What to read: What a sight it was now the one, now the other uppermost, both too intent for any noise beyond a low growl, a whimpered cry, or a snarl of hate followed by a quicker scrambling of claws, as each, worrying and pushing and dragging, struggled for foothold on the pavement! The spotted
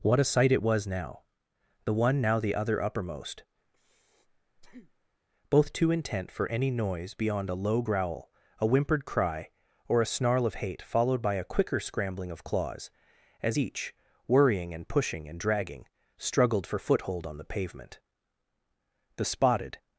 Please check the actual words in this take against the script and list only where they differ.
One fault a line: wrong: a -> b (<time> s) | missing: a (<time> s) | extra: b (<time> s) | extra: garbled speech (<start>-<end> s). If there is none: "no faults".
no faults